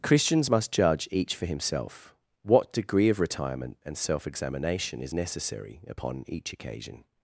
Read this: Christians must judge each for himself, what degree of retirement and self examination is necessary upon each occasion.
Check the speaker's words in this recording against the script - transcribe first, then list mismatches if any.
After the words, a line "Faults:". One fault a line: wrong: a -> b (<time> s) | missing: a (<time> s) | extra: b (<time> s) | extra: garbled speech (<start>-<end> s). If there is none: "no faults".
Christians must judge each for himself, what degree of retirement and self examination is necessary upon each occasion.
Faults:
no faults